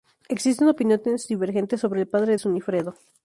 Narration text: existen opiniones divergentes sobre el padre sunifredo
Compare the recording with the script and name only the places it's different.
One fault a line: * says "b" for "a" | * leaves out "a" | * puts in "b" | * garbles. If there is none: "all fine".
all fine